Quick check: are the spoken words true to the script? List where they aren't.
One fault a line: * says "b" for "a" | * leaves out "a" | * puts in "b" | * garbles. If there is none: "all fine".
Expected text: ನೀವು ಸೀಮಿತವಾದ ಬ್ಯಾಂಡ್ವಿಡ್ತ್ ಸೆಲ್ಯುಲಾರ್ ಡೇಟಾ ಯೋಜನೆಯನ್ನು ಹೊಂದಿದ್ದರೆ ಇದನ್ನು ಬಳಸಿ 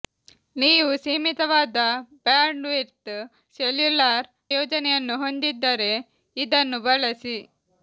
* leaves out "ಡೇಟಾ"